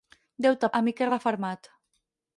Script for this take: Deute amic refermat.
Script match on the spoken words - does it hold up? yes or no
yes